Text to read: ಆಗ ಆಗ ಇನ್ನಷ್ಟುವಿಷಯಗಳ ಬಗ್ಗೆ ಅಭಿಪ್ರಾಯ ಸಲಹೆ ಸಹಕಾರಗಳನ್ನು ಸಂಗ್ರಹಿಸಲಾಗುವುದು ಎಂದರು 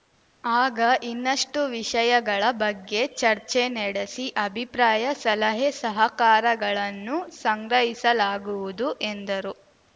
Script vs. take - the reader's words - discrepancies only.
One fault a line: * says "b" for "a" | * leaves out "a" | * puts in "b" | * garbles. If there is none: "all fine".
* leaves out "ಆಗ"
* puts in "ಚರ್ಚೆ ನಡೆಸಿ"